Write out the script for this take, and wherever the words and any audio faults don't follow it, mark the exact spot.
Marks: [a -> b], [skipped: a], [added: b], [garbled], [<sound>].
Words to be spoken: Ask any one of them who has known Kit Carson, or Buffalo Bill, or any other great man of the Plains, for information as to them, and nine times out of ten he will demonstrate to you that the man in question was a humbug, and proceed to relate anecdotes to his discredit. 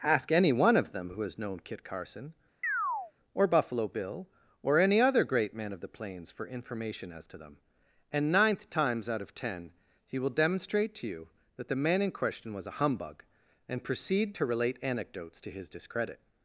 Ask any one of them who has known Kit Carson, [chirp] or Buffalo Bill, or any other great man of the Plains, for information as to them, and [nine -> ninth] times out of ten he will demonstrate to you that the man in question was a humbug, and proceed to relate anecdotes to his discredit.